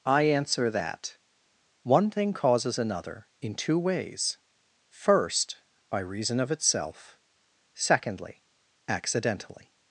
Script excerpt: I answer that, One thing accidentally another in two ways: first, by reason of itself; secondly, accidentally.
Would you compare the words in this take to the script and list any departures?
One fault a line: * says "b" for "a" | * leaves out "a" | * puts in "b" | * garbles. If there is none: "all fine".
* says "causes" for "accidentally"